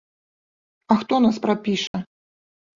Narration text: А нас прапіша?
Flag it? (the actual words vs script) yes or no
yes